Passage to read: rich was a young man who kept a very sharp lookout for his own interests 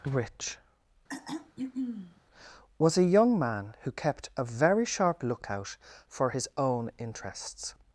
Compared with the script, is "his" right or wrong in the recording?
right